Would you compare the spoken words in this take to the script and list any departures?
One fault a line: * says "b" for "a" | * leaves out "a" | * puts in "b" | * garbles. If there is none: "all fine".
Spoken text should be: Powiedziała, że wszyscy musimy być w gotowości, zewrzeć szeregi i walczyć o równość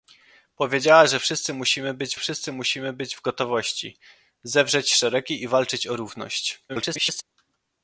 * puts in "wszyscy musimy być"
* garbles